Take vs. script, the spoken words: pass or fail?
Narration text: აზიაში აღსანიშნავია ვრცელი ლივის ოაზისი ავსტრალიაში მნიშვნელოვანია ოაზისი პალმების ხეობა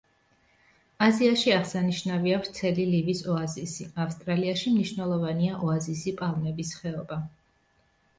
pass